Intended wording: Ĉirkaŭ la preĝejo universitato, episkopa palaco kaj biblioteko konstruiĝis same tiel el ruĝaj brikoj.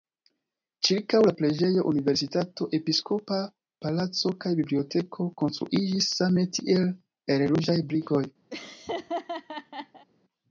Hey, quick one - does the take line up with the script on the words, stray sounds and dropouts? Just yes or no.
no